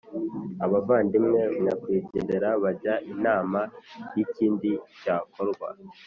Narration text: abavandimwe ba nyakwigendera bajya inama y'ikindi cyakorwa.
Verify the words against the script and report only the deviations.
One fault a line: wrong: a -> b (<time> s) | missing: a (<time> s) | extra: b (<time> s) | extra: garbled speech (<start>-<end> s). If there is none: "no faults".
missing: ba (1.4 s)